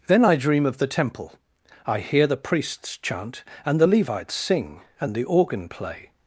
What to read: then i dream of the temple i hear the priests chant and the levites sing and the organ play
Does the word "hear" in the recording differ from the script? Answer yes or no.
no